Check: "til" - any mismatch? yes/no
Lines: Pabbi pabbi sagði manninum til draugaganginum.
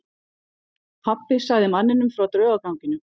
yes